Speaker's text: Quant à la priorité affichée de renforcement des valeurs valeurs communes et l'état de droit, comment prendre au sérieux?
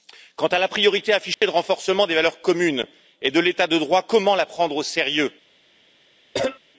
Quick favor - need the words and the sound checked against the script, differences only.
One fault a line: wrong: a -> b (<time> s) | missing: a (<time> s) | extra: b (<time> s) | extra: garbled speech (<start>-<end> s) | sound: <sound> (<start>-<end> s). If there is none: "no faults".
sound: dropout (1.3-1.4 s)
missing: valeurs (2.4 s)
extra: de (3.3 s)
extra: la (4.3 s)
sound: cough (6.3-6.6 s)